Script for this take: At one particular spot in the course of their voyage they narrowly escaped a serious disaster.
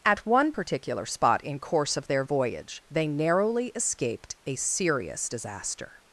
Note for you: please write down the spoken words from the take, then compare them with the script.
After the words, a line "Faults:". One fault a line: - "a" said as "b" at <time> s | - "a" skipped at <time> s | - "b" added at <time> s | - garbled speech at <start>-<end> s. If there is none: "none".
At one particular spot in course of their voyage they narrowly escaped a serious disaster.
Faults:
- "the" skipped at 1.6 s